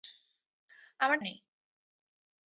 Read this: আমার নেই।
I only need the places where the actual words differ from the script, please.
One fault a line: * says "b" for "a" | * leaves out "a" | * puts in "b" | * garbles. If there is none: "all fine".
all fine